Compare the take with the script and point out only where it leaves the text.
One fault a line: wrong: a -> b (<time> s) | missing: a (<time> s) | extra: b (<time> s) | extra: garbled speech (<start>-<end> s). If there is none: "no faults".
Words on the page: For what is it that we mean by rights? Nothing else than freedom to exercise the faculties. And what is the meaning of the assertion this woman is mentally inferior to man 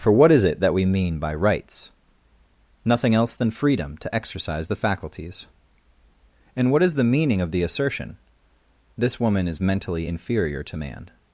no faults